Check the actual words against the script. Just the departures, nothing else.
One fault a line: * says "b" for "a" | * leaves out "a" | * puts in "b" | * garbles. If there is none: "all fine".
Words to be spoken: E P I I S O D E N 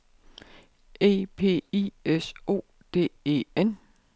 * leaves out "I"